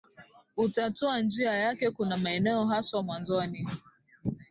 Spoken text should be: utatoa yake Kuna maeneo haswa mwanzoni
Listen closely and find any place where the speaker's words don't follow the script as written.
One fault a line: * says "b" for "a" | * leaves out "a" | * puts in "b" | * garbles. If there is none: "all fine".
* puts in "njia"